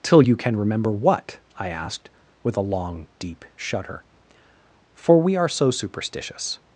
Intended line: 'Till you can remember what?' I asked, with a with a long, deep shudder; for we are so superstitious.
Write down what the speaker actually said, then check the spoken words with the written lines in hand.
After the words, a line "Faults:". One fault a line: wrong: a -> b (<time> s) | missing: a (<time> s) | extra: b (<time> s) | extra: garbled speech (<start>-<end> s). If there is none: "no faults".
'Till you can remember what?' I asked, with a long, deep shudder; for we are so superstitious.
Faults:
missing: with a (2.7 s)